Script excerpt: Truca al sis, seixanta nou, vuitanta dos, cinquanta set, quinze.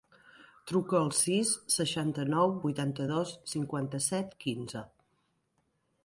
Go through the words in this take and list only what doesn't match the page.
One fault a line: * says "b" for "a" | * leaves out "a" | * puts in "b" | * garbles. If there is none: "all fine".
all fine